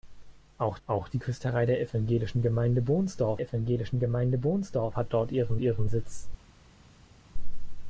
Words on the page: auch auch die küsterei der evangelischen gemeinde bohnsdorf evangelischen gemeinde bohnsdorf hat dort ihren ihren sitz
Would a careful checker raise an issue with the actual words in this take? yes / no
no